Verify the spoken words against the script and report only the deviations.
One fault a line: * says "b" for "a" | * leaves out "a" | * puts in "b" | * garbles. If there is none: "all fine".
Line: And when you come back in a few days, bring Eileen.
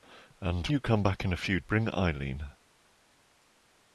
* leaves out "when"
* leaves out "days"